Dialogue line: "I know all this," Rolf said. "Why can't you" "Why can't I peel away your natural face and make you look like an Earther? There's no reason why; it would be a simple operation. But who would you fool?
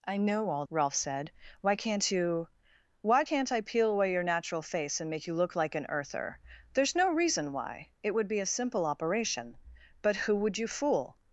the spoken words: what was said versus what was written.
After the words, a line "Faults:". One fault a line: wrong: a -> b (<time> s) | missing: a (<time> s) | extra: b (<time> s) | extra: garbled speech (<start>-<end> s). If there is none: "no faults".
"I know all," Rolf said. "Why can't you" "Why can't I peel away your natural face and make you look like an Earther? There's no reason why; it would be a simple operation. But who would you fool?
Faults:
missing: this (0.7 s)